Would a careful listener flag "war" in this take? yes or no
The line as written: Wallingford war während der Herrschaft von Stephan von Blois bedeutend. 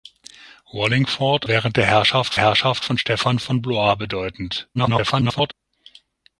yes